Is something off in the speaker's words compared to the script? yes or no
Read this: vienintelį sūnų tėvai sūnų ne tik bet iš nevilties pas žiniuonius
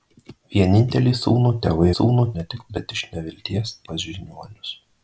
no